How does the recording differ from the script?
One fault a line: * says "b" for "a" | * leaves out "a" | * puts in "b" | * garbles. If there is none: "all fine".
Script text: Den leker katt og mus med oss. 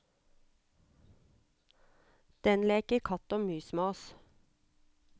all fine